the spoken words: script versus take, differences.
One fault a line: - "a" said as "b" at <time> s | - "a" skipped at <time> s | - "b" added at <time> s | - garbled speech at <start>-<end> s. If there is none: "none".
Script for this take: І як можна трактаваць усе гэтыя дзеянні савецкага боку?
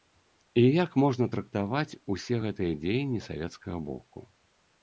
none